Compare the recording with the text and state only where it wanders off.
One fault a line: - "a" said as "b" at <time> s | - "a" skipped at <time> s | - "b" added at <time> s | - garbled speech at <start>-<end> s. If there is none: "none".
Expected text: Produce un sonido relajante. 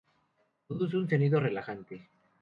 none